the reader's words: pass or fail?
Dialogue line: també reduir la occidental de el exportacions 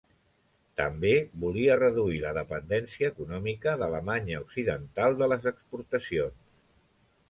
fail